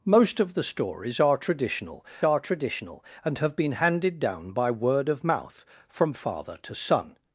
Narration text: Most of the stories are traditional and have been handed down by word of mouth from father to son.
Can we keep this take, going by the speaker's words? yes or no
no